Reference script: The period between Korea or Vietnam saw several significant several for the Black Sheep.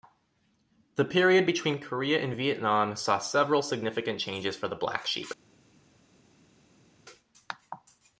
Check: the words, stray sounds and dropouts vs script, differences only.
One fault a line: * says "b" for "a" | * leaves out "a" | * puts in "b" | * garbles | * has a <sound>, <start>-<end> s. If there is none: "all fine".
* says "and" for "or"
* says "changes" for "several"